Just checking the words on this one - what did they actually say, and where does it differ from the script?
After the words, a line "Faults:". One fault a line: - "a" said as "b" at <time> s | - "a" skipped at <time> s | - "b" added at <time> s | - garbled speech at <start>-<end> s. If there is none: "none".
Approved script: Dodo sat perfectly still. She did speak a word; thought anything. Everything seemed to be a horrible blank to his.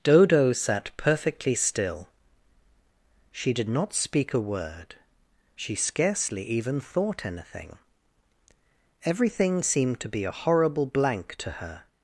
Dodo sat perfectly still. She did not speak a word; she scarcely even thought anything. Everything seemed to be a horrible blank to her.
Faults:
- "not" added at 3.7 s
- "she scarcely even" added at 5.5 s
- "his" said as "her" at 11.5 s